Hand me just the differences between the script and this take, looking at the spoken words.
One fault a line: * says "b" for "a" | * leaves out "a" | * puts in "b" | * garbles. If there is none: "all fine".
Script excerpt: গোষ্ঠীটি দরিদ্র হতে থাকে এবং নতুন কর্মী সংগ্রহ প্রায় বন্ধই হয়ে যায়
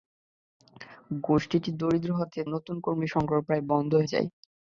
* leaves out "থাকে এবং"
* leaves out "হয়ে"